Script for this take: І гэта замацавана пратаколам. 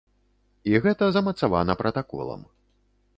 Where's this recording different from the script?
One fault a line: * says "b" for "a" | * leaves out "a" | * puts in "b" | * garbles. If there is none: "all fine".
all fine